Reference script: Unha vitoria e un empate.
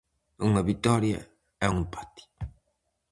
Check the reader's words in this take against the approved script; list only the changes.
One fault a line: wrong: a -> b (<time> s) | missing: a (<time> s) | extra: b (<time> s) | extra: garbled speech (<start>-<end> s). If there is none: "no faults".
no faults